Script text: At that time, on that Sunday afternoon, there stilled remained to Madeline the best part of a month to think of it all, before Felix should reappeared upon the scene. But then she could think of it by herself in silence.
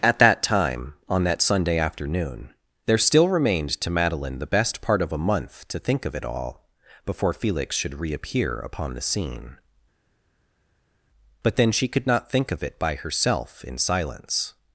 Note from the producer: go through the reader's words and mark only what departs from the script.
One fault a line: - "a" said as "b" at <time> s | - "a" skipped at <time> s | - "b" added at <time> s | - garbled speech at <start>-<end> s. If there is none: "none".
- "stilled" said as "still" at 3.0 s
- "reappeared" said as "reappear" at 8.0 s
- "not" added at 12.1 s